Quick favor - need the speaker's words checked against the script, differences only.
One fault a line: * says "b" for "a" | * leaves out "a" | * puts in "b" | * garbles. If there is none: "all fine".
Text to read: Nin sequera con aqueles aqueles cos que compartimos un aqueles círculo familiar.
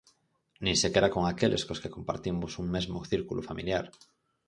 * leaves out "aqueles"
* says "mesmo" for "aqueles"